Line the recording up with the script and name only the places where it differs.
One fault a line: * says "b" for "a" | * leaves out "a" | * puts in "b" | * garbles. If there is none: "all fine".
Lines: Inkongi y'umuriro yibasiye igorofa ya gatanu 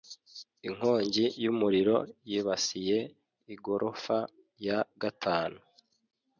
all fine